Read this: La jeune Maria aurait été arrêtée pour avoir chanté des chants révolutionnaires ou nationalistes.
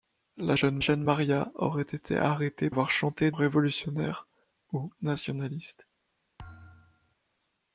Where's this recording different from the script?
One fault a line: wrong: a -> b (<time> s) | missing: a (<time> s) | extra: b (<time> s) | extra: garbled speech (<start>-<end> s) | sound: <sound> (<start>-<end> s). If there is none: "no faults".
extra: jeune (0.8 s)
missing: pour (2.7 s)
missing: des chants (3.3 s)
sound: thud (6.4-7.2 s)